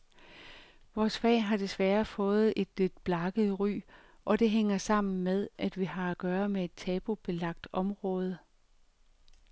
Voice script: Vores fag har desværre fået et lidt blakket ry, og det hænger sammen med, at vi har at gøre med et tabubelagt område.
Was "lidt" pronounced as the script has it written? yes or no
yes